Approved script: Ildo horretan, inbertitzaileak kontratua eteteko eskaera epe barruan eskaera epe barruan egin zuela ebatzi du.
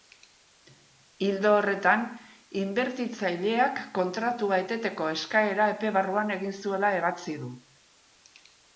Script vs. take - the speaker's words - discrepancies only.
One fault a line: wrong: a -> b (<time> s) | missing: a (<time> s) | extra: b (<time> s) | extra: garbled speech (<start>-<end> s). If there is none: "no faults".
missing: eskaera epe barruan (6.4 s)